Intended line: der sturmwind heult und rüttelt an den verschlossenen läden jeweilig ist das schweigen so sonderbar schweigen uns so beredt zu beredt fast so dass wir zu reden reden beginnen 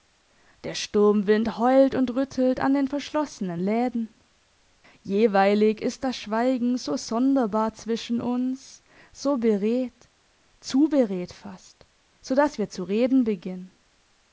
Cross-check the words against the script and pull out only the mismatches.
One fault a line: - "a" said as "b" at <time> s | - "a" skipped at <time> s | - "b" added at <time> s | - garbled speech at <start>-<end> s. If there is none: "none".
- "schweigen" said as "zwischen" at 7.7 s
- "reden" skipped at 13.2 s